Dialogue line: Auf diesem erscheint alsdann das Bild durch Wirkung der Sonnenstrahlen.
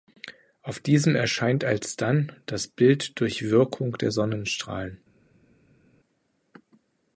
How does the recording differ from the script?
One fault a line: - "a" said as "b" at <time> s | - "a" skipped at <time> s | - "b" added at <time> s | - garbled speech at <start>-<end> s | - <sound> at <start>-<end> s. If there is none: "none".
none